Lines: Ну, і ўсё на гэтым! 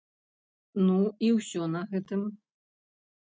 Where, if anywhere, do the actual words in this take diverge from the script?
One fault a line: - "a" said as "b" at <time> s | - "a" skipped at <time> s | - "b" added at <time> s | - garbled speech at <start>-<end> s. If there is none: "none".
none